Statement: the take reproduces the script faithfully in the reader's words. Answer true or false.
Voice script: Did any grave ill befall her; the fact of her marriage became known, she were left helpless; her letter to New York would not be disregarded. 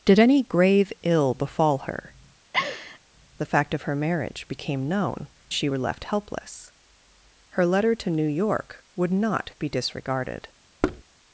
true